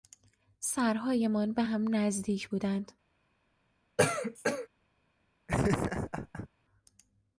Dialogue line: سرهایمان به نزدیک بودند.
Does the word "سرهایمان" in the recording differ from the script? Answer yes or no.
no